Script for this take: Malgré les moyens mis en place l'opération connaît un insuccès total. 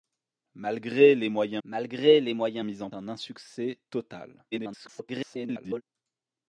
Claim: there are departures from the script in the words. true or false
true